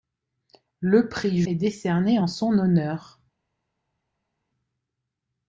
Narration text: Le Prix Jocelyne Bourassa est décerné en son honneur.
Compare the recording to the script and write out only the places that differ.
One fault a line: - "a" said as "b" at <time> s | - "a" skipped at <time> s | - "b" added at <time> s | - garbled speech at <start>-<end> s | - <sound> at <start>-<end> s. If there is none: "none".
- "Jocelyne Bourassa" skipped at 1.4 s